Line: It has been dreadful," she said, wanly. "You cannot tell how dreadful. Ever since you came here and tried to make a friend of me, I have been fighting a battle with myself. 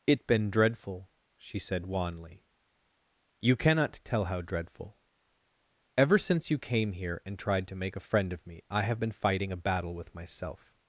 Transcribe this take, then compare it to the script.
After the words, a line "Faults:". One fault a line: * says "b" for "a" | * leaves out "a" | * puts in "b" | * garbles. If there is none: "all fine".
It been dreadful," she said, wanly. "You cannot tell how dreadful. Ever since you came here and tried to make a friend of me, I have been fighting a battle with myself.
Faults:
* leaves out "has"